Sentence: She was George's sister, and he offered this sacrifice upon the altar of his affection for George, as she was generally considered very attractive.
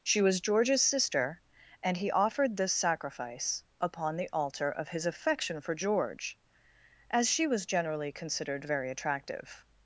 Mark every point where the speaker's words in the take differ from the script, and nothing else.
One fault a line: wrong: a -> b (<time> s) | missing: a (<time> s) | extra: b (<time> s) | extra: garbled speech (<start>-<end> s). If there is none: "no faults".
no faults